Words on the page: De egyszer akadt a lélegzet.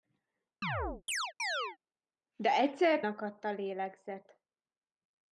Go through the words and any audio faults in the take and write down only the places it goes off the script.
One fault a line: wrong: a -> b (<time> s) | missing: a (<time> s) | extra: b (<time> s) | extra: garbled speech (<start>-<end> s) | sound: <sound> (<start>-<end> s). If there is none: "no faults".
sound: chirp (0.6-1.8 s)